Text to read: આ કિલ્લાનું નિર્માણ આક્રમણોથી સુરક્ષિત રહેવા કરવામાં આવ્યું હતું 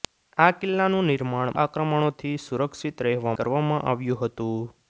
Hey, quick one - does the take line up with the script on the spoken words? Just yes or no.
yes